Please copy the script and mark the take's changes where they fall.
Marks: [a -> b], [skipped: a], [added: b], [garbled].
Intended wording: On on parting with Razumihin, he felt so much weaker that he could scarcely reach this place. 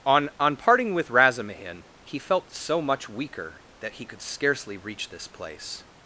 On on parting with Razumihin, he felt so much weaker that he could scarcely reach this place.